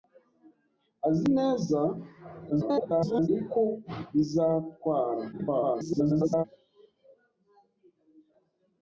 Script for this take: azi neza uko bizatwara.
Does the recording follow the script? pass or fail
fail